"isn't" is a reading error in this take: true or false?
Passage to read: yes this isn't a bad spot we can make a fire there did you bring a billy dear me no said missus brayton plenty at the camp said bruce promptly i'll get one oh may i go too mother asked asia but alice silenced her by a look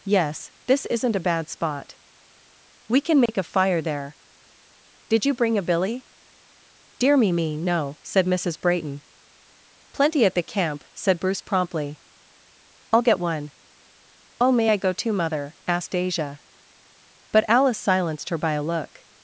false